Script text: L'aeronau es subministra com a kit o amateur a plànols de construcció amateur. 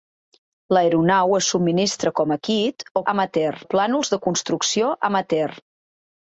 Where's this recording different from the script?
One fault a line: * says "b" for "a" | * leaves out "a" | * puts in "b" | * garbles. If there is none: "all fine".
all fine